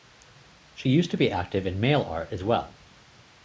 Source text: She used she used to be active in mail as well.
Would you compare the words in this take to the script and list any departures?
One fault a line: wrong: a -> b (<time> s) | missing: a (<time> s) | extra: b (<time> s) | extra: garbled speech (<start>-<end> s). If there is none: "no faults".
missing: she used (1.1 s)
extra: art (2.0 s)